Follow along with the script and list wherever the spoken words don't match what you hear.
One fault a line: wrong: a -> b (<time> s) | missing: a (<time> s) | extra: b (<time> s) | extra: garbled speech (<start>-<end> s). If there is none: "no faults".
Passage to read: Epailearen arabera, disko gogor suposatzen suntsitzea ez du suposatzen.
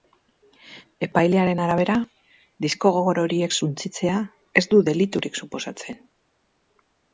wrong: suposatzen -> horiek (3.2 s)
extra: deliturik (4.9 s)